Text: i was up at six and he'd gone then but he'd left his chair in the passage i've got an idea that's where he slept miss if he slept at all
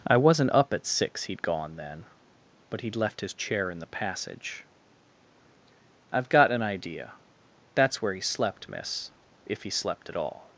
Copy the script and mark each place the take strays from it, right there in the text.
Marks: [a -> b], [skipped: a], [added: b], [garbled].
i [was -> wasn't] up at six [skipped: and] he'd gone then but he'd left his chair in the passage i've got an idea that's where he slept miss if he slept at all